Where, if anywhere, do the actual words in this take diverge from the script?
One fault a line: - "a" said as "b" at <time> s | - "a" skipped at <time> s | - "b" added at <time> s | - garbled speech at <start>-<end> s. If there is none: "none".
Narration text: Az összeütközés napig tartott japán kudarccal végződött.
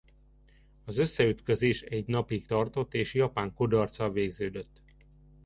- "egy" added at 1.8 s
- "és" added at 2.9 s